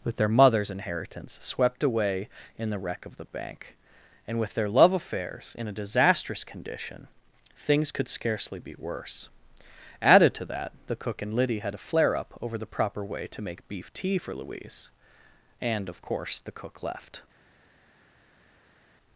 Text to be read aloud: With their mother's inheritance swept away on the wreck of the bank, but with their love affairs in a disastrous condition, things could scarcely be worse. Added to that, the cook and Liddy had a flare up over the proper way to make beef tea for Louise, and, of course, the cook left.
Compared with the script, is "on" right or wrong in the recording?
wrong